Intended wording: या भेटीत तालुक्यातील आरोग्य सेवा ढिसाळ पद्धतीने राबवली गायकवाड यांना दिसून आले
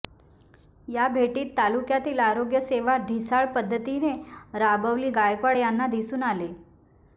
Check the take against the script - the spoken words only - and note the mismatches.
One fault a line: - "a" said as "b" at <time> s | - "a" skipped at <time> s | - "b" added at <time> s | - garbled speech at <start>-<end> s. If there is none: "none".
none